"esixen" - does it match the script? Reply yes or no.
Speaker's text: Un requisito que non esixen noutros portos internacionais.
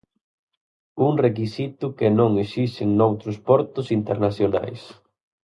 yes